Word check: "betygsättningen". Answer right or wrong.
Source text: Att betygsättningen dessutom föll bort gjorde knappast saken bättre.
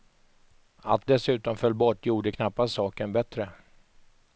wrong